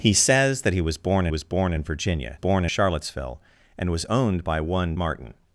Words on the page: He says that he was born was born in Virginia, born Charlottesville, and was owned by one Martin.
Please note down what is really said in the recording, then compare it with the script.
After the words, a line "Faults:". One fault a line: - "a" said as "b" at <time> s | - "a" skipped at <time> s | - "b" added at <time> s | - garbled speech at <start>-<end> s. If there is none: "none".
He says that he was born was born in Virginia, born Charlottesville, and was owned by one Martin.
Faults:
none